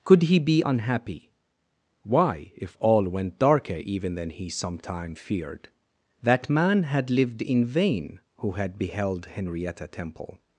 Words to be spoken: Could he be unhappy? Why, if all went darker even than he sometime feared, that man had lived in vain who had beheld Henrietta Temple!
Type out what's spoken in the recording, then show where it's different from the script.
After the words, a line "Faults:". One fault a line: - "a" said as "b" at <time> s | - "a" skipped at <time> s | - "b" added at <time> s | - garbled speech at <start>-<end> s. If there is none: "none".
Could he be unhappy? Why, if all went darker even than he sometime feared, that man had lived in vain who had beheld Henrietta Temple!
Faults:
none